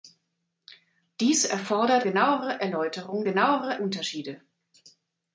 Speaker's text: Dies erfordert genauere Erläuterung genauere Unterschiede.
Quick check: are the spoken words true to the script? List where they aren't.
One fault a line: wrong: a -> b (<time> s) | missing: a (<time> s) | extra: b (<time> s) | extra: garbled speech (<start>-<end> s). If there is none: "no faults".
no faults